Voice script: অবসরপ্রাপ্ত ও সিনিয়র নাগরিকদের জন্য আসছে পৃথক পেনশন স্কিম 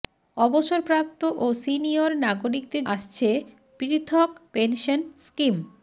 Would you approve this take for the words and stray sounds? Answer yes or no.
no